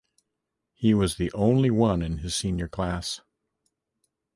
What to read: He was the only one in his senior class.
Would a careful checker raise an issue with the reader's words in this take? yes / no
no